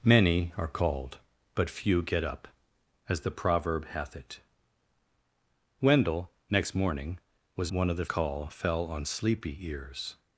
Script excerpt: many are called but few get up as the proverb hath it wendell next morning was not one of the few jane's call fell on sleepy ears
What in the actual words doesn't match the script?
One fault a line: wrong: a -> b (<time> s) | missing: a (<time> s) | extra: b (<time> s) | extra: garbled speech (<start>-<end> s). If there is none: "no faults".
missing: not (7.7 s)
missing: few jane's (8.1 s)